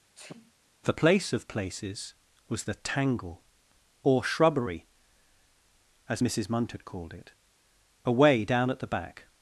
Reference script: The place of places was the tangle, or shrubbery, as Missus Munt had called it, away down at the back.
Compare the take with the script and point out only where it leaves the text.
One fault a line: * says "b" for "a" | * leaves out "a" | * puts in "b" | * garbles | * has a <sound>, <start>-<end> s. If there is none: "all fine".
* has a sneeze, 0.1-0.5 s